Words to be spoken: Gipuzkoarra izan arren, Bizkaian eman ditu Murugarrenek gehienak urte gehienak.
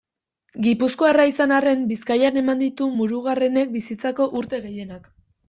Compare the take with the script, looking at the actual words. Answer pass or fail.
fail